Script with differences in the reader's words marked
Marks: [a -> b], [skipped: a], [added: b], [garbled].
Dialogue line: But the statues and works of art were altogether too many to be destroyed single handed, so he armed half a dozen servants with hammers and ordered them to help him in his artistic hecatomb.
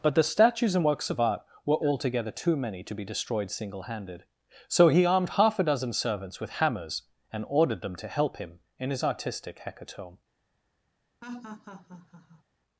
But the statues and works of art were altogether too many to be destroyed single handed, so he armed half a dozen servants with hammers and ordered them to help him in his artistic hecatomb.